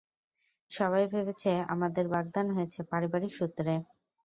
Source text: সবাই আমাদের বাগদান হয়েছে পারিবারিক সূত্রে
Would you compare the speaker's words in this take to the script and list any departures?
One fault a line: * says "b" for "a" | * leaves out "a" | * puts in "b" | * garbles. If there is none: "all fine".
* puts in "ভেবেছে"